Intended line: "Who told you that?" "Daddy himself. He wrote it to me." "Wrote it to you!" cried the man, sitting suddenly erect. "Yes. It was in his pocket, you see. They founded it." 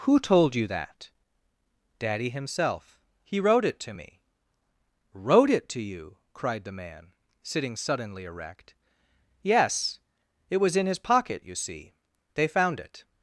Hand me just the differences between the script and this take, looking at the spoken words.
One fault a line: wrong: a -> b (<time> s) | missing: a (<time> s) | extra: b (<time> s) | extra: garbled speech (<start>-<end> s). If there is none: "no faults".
wrong: founded -> found (12.5 s)